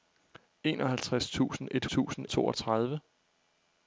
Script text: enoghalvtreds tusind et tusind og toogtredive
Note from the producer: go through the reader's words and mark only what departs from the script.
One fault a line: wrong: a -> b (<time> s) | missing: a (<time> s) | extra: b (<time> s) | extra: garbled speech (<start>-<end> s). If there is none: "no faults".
no faults